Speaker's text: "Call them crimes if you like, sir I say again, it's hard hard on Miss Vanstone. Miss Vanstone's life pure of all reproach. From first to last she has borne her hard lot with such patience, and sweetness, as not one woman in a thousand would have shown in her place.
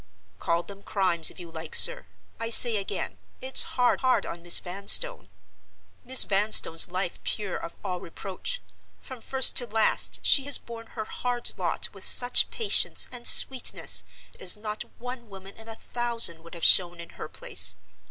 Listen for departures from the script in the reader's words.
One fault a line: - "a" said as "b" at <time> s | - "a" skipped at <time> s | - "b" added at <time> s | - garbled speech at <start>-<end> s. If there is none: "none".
none